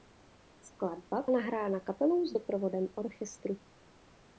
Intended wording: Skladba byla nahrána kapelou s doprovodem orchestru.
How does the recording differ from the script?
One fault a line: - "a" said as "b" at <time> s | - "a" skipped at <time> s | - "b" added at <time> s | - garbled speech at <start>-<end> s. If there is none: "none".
- "byla" skipped at 1.2 s